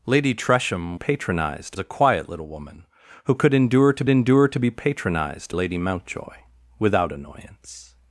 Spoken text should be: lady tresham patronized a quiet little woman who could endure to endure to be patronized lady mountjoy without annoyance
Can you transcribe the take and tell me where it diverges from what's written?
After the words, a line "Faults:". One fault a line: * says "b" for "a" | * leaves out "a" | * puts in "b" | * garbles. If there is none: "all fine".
lady tresham patronized a quiet little woman who could endure to endure to be patronized lady mountjoy without annoyance
Faults:
all fine